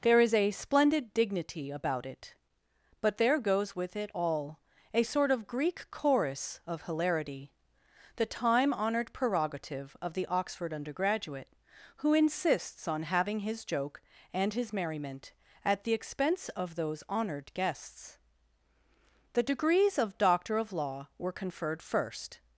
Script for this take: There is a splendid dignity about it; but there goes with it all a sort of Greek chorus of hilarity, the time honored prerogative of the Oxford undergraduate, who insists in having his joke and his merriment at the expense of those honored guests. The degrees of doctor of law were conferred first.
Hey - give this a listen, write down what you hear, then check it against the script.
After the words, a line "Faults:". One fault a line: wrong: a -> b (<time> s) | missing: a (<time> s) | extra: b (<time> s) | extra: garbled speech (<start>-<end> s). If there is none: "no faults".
There is a splendid dignity about it; but there goes with it all a sort of Greek chorus of hilarity, the time honored prerogative of the Oxford undergraduate, who insists on having his joke and his merriment at the expense of those honored guests. The degrees of doctor of law were conferred first.
Faults:
wrong: in -> on (12.9 s)